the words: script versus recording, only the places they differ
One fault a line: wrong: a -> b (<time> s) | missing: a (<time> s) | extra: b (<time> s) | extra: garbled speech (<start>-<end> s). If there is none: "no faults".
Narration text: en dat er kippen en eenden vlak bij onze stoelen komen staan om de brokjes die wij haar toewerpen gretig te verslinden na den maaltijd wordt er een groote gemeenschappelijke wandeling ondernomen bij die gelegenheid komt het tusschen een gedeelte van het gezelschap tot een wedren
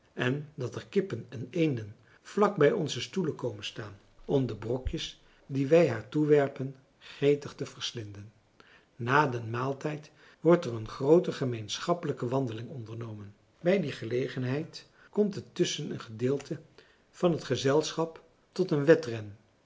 no faults